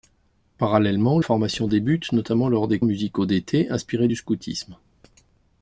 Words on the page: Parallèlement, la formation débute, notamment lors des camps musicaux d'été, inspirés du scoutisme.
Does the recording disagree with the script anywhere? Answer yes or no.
yes